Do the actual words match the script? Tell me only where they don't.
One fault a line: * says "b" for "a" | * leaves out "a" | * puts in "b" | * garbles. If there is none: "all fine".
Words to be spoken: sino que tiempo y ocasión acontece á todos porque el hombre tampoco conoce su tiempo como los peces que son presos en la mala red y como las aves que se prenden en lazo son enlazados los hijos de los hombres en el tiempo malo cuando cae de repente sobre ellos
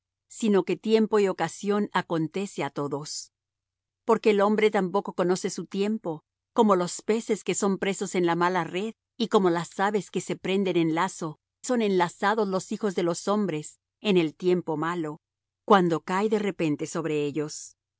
all fine